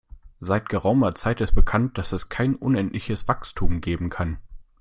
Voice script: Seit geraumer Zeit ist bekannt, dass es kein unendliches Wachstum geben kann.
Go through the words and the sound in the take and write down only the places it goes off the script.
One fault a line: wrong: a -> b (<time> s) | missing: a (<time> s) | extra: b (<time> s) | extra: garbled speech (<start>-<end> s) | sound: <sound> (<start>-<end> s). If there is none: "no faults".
no faults